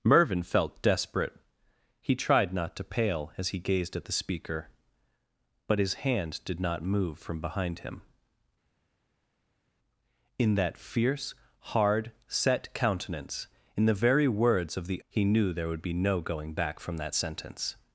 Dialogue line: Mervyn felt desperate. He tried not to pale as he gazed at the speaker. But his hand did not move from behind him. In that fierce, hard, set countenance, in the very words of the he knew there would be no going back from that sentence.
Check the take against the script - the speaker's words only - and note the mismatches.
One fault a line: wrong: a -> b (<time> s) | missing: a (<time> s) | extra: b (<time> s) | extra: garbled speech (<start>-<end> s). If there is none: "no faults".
no faults